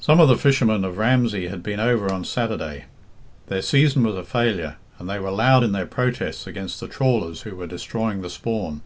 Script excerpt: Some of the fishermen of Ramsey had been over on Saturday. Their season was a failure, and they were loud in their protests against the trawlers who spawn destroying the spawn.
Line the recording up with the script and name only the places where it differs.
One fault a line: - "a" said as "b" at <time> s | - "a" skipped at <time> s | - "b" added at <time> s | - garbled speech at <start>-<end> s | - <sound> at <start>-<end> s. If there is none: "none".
- "spawn" said as "were" at 7.5 s